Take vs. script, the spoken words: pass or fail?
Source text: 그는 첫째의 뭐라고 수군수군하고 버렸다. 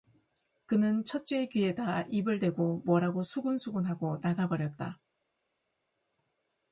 fail